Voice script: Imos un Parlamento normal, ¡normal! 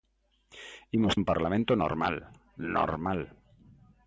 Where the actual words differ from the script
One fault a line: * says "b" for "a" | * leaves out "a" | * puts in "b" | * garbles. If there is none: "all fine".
all fine